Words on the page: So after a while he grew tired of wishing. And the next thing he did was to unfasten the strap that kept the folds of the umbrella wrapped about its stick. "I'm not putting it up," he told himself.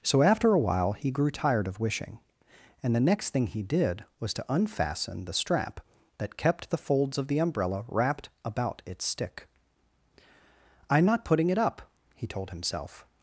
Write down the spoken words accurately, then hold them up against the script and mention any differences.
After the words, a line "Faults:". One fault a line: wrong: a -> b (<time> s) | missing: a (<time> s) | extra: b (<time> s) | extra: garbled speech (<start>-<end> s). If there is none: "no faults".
So after a while he grew tired of wishing. And the next thing he did was to unfasten the strap that kept the folds of the umbrella wrapped about its stick. "I'm not putting it up," he told himself.
Faults:
no faults